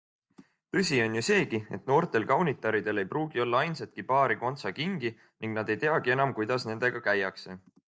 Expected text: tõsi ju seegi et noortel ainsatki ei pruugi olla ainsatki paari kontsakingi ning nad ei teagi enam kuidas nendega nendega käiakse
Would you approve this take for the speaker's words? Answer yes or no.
no